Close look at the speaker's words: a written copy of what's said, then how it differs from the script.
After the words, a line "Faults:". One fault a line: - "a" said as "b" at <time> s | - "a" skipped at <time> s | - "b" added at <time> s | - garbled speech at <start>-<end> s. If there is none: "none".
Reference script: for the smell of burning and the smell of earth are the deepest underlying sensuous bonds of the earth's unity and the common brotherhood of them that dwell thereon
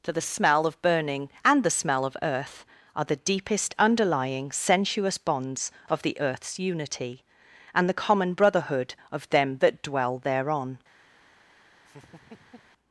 for the smell of burning and the smell of earth are the deepest underlying sensuous bonds of the earth's unity and the common brotherhood of them that dwell thereon
Faults:
none